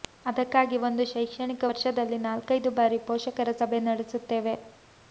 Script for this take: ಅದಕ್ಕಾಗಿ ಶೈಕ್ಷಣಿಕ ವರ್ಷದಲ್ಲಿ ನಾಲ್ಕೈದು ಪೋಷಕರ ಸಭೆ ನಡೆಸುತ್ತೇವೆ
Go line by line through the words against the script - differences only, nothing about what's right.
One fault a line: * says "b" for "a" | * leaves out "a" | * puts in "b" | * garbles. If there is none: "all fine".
* puts in "ಒಂದು"
* puts in "ಬಾರಿ"